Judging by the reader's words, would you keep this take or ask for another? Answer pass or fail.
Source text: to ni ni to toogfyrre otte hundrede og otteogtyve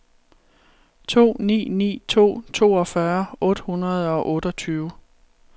pass